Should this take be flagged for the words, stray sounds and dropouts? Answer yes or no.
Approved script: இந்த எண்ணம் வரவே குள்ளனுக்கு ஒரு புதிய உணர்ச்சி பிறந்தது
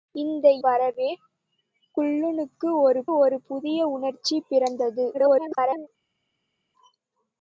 yes